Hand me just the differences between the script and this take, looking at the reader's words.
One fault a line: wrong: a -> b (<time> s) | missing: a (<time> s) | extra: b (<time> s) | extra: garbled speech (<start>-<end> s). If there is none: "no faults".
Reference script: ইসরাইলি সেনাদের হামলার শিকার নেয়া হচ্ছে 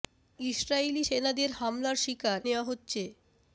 no faults